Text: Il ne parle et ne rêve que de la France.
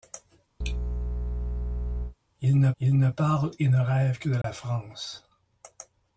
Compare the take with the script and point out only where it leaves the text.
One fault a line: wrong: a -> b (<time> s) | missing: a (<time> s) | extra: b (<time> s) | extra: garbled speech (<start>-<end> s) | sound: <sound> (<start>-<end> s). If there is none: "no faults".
sound: sneeze (0.6-2.2 s)
extra: il ne (2.8 s)
sound: dropout (4.4-4.4 s)